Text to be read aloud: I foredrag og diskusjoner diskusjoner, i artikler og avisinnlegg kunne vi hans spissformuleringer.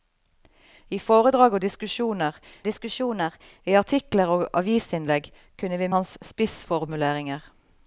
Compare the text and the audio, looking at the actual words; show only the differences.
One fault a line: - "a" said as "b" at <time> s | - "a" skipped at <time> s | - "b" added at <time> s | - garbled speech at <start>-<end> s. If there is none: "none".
none